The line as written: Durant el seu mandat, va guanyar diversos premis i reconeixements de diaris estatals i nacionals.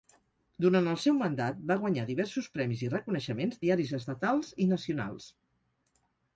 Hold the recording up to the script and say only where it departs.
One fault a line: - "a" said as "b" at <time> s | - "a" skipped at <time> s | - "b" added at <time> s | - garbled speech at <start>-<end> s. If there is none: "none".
- "de" skipped at 3.6 s